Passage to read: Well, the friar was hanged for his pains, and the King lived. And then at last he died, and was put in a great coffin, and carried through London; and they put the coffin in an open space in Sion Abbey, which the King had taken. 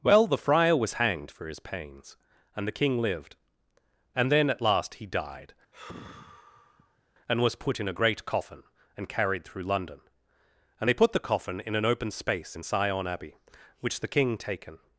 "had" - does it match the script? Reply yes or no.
no